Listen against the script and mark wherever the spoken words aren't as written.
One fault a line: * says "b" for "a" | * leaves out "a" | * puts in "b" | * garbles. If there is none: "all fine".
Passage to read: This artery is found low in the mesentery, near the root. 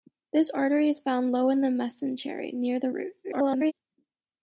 * garbles